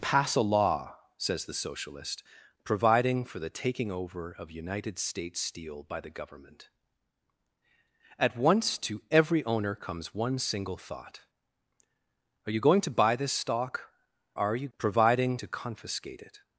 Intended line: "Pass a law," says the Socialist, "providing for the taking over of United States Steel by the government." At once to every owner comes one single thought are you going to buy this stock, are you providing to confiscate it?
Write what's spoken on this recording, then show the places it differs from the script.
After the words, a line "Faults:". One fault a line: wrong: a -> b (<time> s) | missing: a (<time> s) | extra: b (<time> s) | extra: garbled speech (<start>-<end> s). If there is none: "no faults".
"Pass a law," says the Socialist, "providing for the taking over of United States Steel by the government." At once to every owner comes one single thought are you going to buy this stock, are you providing to confiscate it?
Faults:
no faults